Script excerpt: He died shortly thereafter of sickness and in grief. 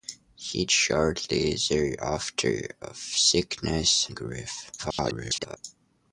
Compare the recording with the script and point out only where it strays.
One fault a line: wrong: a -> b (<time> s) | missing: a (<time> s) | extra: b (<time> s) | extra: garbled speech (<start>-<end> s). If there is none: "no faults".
missing: died (0.7 s)
missing: and (4.1 s)
extra: garbled speech (4.8-5.6 s)